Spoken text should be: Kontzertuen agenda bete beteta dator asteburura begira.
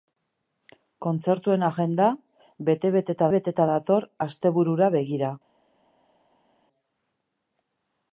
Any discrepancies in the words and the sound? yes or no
yes